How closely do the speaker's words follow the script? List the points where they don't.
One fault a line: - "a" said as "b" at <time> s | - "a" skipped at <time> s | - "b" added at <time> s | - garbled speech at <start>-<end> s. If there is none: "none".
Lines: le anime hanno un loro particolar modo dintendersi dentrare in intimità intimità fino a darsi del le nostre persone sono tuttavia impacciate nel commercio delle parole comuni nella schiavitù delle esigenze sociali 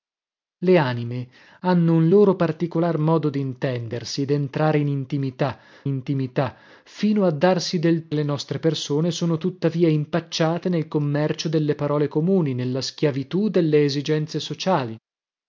none